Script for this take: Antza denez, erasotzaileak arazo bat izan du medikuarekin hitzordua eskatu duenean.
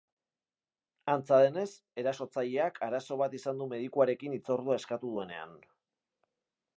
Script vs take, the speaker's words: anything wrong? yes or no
no